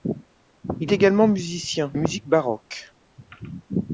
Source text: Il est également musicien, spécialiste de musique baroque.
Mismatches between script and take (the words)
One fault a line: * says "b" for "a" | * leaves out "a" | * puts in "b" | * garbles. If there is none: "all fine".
* leaves out "est"
* leaves out "spécialiste de"